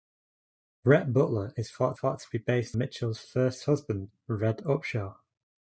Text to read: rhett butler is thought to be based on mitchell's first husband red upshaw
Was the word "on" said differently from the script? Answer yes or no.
yes